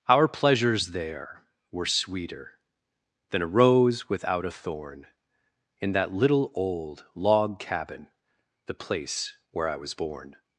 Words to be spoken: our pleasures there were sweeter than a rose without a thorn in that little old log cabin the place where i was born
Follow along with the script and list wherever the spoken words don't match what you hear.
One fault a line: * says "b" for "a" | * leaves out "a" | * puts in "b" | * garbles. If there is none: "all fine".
all fine